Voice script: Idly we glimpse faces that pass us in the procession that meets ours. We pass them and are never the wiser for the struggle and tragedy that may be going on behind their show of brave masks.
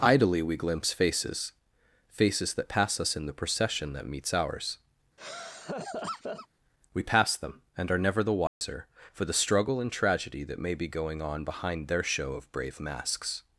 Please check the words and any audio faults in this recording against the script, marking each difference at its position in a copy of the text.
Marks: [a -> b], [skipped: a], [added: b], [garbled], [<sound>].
Idly we glimpse faces [added: faces] that pass us in the procession that meets ours. [laugh] We pass them and are never the wiser [dropout] for the struggle and tragedy that may be going on behind their show of brave masks.